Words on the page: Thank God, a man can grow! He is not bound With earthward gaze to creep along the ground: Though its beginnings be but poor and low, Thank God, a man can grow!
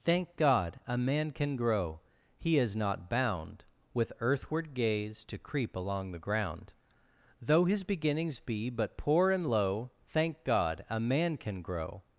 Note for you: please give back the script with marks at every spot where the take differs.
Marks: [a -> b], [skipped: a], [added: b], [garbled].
Thank God, a man can grow! He is not bound With earthward gaze to creep along the ground: Though [its -> his] beginnings be but poor and low, Thank God, a man can grow!